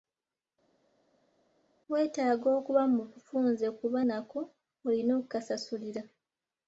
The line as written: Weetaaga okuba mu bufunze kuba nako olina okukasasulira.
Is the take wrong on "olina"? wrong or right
right